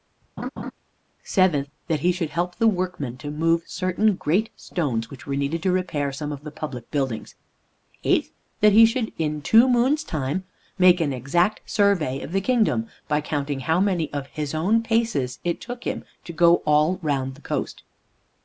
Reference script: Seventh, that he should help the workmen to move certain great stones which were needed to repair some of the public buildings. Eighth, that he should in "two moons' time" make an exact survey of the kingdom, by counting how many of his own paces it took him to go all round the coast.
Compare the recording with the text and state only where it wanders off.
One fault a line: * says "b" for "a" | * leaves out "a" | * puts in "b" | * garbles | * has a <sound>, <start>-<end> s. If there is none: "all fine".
* has a laugh, 0.4-0.7 s